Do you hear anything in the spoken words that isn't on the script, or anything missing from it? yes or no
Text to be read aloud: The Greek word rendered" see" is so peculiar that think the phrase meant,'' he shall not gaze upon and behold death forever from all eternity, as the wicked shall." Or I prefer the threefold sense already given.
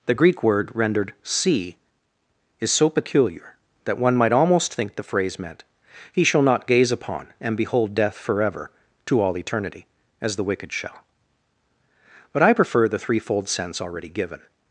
yes